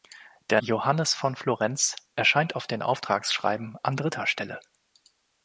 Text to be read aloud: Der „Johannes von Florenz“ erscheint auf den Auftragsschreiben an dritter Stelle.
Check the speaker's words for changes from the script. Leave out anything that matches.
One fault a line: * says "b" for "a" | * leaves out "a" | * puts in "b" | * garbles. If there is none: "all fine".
all fine